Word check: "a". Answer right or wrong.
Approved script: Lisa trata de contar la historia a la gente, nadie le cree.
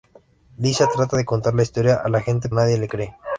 right